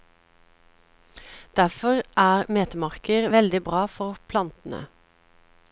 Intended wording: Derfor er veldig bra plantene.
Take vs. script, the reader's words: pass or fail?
fail